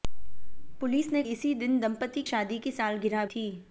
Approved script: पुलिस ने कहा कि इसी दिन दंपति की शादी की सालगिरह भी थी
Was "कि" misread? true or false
true